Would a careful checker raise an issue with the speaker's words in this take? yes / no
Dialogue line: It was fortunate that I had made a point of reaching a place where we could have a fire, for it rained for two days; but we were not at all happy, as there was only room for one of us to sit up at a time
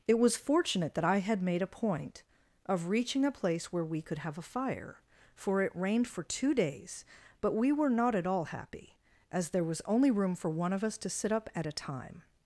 no